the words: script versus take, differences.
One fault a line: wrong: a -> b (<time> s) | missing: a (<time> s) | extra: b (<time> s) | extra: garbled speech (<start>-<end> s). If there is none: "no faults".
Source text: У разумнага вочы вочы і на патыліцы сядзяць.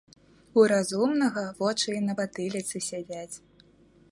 missing: вочы (1.9 s)